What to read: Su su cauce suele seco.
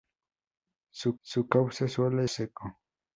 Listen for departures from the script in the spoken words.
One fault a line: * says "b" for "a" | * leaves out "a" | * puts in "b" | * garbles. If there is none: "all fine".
all fine